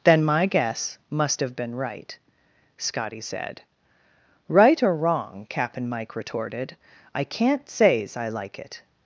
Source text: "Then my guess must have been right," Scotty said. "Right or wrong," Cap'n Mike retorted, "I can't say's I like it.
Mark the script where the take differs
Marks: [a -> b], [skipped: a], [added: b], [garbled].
"Then my guess must have been right," Scotty said. "Right or wrong," Cap'n Mike retorted, "I can't say's I like it.